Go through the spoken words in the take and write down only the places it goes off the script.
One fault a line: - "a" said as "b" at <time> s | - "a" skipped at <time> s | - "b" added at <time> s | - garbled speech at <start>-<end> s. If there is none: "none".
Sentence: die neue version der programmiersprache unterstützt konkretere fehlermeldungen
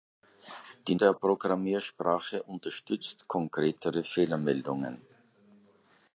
- "neue version" skipped at 0.9 s